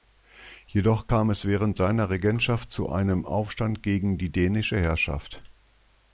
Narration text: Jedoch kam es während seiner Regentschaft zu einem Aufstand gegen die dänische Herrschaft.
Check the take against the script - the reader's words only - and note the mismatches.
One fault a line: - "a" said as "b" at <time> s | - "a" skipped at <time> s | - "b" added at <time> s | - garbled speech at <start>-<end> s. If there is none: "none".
none